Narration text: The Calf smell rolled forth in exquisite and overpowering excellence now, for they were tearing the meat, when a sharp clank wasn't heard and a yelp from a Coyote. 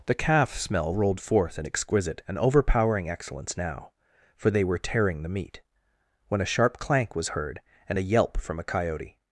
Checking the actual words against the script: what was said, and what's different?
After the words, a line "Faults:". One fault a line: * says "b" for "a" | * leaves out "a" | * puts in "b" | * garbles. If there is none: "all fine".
The Calf smell rolled forth in exquisite and overpowering excellence now, for they were tearing the meat, when a sharp clank was heard and a yelp from a Coyote.
Faults:
* says "was" for "wasn't"